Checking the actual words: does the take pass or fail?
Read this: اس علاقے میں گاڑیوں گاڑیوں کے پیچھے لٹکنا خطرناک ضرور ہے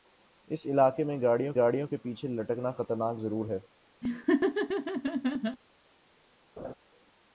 pass